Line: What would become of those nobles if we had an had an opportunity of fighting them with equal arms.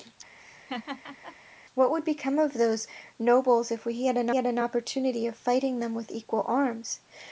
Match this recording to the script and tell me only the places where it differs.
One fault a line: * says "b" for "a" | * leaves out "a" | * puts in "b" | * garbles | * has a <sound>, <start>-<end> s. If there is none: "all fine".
* has a laugh, 0.4-1.4 s